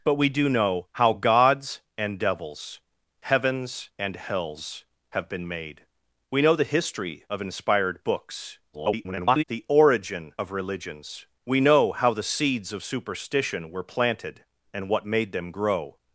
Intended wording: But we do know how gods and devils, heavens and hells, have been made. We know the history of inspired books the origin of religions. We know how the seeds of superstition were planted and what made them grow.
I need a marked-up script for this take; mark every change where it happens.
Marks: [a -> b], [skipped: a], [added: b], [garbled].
But we do know how gods and devils, heavens and hells, have been made. We know the history of inspired books [garbled] the origin of religions. We know how the seeds of superstition were planted and what made them grow.